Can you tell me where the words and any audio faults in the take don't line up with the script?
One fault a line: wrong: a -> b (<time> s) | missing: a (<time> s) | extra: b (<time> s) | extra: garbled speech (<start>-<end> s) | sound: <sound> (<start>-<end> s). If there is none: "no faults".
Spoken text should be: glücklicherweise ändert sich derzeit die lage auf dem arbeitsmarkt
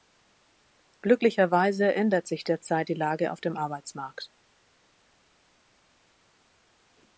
no faults